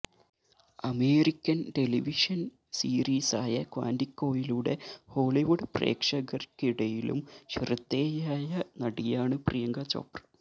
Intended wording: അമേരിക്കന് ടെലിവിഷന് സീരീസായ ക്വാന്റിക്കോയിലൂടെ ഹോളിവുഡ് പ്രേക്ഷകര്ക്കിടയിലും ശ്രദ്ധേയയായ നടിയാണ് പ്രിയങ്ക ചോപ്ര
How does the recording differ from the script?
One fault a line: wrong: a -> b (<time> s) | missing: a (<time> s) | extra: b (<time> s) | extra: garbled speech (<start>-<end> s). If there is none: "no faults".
no faults